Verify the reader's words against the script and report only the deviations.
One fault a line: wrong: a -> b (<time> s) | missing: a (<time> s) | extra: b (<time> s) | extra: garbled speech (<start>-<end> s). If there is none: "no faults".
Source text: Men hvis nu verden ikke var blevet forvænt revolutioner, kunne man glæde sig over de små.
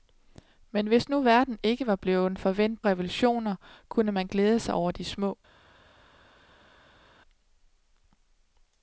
no faults